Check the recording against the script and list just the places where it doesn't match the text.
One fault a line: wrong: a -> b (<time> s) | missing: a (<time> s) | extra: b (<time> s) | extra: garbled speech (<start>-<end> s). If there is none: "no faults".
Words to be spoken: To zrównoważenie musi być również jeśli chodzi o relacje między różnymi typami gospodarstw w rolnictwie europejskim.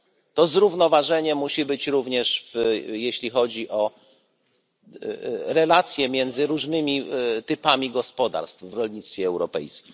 no faults